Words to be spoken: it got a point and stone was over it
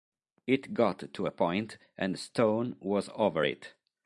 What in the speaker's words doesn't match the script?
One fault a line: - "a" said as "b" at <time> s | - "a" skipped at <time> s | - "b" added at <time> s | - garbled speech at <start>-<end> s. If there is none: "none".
- "to" added at 1.1 s